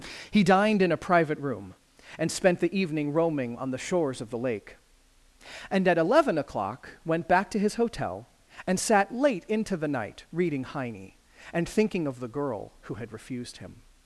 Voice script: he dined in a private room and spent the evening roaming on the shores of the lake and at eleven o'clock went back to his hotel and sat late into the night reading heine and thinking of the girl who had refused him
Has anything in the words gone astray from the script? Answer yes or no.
no